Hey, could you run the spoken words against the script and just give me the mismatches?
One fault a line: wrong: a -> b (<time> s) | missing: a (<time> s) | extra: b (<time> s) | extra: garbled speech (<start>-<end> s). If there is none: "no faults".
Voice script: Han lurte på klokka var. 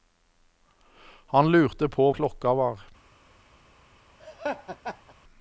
no faults